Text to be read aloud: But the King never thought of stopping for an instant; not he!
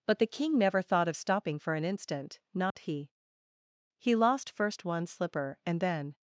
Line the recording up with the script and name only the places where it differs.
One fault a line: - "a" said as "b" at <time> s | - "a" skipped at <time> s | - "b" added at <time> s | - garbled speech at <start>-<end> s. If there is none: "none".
- "He lost first one slipper and then" added at 4.0 s